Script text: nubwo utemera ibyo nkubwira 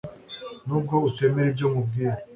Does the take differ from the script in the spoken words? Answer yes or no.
no